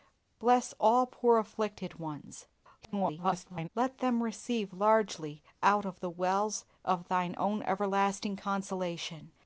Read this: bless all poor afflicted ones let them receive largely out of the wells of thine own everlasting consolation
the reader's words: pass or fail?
fail